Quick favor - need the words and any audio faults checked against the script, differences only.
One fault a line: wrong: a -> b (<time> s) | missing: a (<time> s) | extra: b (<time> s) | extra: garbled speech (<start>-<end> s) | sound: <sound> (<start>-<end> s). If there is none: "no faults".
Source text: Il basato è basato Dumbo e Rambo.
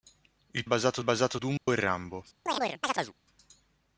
sound: dropout (1.6-1.7 s)
sound: chirp (2.5-3.1 s)